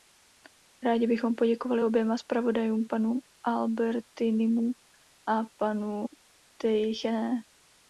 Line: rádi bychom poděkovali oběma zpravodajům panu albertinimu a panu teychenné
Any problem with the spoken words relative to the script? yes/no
no